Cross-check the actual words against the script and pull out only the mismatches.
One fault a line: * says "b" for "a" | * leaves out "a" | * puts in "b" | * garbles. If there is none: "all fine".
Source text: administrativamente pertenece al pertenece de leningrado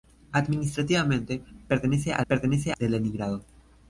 all fine